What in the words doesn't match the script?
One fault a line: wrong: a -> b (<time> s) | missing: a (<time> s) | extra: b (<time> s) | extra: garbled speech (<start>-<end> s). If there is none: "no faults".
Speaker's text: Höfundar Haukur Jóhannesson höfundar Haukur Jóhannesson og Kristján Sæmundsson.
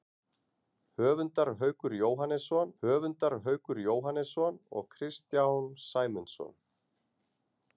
no faults